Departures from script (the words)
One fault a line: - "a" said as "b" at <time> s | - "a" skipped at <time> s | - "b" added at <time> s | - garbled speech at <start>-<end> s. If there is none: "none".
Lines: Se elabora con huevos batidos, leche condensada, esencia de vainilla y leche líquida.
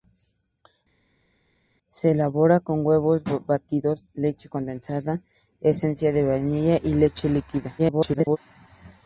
- garbled speech at 7.8-8.4 s